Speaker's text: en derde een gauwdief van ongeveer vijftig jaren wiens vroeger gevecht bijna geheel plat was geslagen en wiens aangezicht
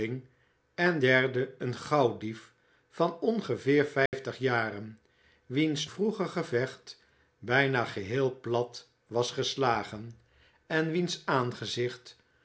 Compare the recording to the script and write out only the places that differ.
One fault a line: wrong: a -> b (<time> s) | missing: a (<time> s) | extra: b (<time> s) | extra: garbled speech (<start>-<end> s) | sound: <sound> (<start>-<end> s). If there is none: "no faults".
sound: dropout (4.1-4.1 s)